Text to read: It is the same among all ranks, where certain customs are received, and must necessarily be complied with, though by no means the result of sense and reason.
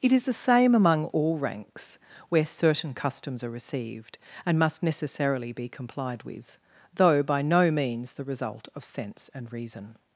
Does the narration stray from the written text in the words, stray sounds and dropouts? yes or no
no